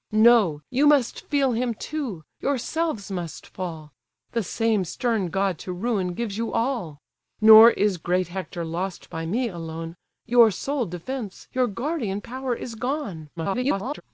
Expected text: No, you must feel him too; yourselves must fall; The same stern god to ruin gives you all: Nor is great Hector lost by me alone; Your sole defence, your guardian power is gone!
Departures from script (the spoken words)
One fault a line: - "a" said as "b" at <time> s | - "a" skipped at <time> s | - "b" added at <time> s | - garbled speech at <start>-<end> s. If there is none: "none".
- garbled speech at 13.4-14.0 s